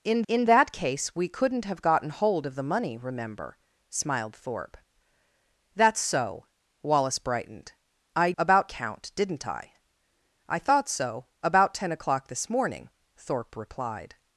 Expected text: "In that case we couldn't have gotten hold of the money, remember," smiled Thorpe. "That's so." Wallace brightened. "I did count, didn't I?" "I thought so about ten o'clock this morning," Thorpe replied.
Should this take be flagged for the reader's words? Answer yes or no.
yes